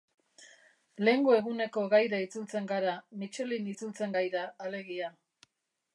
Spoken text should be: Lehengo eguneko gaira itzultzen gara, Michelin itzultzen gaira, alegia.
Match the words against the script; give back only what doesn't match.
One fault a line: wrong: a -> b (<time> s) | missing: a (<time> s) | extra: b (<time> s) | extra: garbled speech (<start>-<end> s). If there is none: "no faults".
no faults